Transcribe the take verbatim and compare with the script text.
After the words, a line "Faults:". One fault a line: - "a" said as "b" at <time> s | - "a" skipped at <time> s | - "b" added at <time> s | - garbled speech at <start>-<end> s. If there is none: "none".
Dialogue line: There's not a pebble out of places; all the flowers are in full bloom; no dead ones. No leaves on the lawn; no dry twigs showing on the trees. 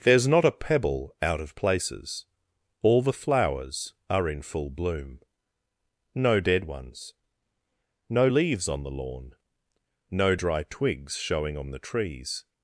There's not a pebble out of places; all the flowers are in full bloom; no dead ones. No leaves on the lawn; no dry twigs showing on the trees.
Faults:
none